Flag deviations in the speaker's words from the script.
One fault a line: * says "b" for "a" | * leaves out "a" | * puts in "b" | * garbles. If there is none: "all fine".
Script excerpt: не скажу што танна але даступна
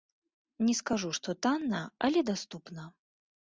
all fine